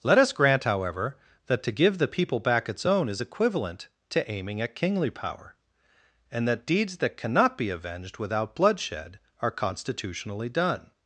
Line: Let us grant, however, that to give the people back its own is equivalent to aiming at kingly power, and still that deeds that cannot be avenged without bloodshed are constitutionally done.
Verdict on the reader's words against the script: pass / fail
fail